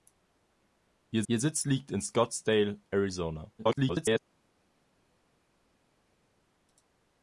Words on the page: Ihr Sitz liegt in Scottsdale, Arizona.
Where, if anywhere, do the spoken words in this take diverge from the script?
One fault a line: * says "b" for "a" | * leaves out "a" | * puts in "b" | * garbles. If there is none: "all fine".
* puts in "ihr"
* garbles